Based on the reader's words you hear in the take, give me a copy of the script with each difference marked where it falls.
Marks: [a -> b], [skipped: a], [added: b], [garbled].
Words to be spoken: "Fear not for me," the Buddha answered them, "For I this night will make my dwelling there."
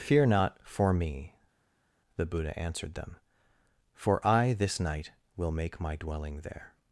"Fear not for me," the Buddha answered them, "For I this night will make my dwelling there."